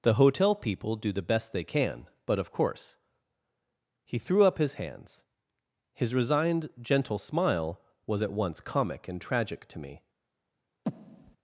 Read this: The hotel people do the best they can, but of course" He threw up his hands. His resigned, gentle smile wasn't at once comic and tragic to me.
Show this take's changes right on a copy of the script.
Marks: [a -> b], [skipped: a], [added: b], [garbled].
The hotel people do the best they can, but of course" He threw up his hands. His resigned, gentle smile [wasn't -> was] at once comic and tragic to me.